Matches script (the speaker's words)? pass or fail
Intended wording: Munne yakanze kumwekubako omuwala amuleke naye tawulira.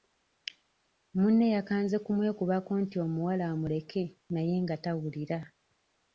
fail